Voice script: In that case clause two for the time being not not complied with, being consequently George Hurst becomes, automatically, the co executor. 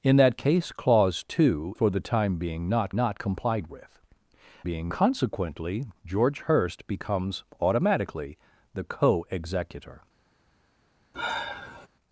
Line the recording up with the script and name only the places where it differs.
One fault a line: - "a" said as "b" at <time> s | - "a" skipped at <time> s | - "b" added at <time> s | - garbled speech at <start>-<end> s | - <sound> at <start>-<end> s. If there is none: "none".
- sigh at 11.1-11.9 s